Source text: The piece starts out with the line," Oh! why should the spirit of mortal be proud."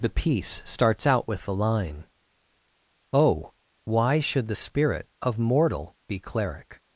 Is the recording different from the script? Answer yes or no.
yes